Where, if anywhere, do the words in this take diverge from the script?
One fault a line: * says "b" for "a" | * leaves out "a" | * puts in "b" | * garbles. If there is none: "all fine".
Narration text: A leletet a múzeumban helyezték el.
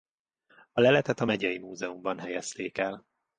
* puts in "megyei"